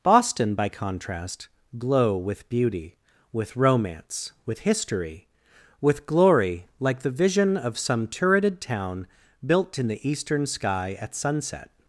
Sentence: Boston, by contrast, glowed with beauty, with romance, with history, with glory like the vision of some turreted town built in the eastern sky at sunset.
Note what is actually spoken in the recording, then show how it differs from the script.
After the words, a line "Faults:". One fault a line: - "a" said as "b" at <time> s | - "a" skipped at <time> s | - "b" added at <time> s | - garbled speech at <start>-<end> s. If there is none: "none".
Boston, by contrast, glow with beauty, with romance, with history, with glory like the vision of some turreted town built in the eastern sky at sunset.
Faults:
- "glowed" said as "glow" at 1.8 s